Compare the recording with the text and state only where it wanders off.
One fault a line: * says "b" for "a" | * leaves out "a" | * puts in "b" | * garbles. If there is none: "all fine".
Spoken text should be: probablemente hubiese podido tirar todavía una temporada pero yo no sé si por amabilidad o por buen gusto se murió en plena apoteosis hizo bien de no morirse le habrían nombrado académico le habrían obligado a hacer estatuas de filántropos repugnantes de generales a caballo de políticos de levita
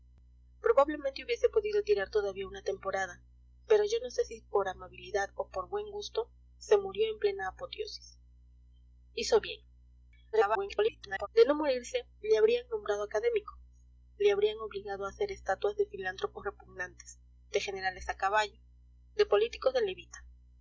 * garbles